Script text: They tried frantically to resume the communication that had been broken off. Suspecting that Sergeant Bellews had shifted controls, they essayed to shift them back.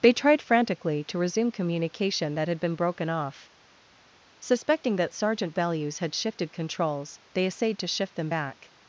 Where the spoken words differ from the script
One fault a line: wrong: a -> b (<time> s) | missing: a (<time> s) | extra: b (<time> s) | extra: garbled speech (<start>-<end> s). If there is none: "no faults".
missing: the (1.5 s)